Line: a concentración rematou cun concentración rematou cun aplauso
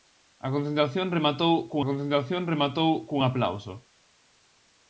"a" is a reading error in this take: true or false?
false